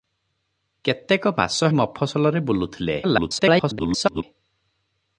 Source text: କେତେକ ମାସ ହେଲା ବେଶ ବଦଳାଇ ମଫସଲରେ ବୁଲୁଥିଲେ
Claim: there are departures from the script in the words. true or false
true